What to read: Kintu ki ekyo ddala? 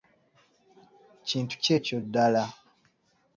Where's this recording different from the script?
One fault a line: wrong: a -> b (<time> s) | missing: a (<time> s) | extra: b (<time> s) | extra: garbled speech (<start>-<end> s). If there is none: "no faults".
no faults